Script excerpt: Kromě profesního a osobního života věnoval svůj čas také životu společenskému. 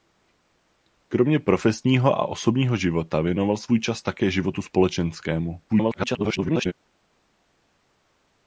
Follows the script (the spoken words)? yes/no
no